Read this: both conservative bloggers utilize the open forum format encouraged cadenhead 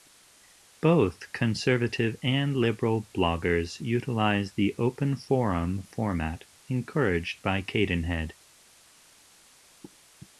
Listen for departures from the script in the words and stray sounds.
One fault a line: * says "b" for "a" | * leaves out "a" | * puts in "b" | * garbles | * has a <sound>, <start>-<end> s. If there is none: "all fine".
* puts in "and liberal"
* puts in "by"